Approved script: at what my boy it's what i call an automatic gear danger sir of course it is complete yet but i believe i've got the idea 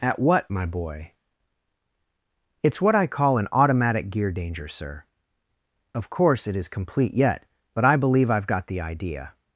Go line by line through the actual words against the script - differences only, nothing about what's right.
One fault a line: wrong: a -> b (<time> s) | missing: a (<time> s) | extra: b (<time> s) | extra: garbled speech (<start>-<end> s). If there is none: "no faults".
no faults